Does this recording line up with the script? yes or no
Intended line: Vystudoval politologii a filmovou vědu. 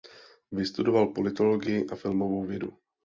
yes